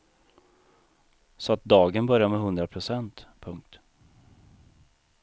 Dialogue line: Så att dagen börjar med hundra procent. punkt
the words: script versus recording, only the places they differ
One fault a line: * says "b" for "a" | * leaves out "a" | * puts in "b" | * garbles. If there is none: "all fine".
all fine